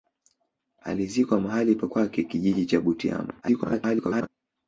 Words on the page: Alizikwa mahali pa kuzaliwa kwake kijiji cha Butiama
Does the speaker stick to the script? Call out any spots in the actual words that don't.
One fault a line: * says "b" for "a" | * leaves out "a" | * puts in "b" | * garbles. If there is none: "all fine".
* leaves out "kuzaliwa"
* garbles